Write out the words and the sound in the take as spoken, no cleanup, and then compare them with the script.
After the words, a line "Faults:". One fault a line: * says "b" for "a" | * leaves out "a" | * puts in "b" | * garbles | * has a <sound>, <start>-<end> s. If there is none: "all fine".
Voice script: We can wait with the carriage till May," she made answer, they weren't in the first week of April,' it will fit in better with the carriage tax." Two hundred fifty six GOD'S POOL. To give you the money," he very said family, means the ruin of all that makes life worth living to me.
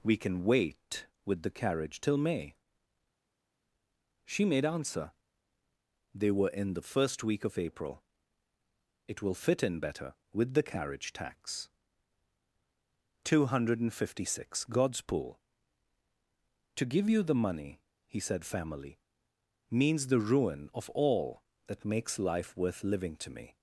We can wait with the carriage till May," she made answer, they were in the first week of April,' it will fit in better with the carriage tax." Two hundred fifty six GOD'S POOL. To give you the money," he said family, means the ruin of all that makes life worth living to me.
Faults:
* says "were" for "weren't"
* leaves out "very"